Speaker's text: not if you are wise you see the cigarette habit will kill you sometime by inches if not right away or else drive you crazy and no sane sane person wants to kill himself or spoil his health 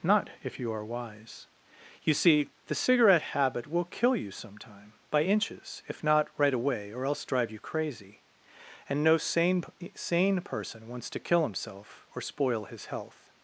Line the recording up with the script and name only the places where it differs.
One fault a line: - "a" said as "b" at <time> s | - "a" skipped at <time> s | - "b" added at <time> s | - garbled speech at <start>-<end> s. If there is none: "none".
none